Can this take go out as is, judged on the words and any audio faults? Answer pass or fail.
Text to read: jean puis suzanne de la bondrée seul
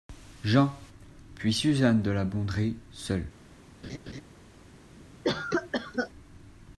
fail